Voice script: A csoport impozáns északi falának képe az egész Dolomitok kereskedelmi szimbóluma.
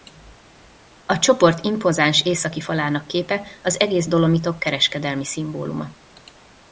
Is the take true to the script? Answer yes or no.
yes